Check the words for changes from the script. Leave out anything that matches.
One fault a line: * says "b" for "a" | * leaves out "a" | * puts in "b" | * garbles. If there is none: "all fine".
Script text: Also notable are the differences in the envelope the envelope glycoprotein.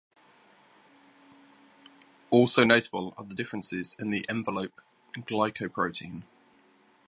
* leaves out "the envelope"